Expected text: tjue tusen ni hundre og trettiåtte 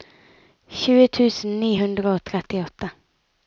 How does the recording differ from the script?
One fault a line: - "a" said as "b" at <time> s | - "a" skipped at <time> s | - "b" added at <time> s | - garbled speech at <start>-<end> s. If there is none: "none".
none